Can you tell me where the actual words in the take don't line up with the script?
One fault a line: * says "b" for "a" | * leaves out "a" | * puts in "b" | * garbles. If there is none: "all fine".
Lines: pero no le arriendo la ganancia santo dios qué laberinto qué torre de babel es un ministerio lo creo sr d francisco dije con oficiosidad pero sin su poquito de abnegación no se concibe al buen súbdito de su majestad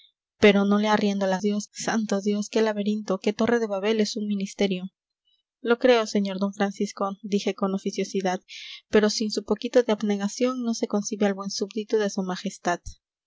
* says "dios" for "ganancia"